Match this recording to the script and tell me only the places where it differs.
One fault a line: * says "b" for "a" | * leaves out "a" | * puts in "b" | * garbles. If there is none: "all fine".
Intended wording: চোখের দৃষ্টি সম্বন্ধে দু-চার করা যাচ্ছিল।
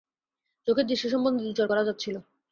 all fine